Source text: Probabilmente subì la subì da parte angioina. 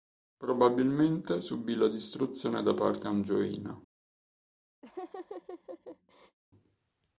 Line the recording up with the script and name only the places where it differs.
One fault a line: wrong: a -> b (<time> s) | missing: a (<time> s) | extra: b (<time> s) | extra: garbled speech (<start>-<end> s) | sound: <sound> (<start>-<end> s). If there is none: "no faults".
wrong: subì -> distruzione (1.9 s)
sound: laugh (4.8-6.4 s)